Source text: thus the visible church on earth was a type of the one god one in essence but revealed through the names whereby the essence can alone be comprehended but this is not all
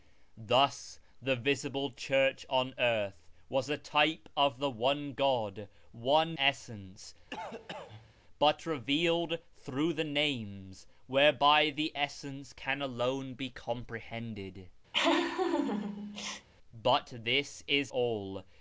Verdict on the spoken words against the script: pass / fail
fail